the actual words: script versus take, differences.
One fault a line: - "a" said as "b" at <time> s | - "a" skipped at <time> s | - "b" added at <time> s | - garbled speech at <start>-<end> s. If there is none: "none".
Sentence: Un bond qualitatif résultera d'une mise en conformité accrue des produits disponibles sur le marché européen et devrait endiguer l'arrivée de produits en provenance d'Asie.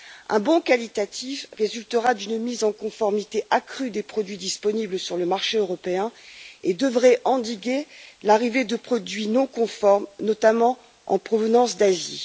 - "non conformes notamment" added at 9.3 s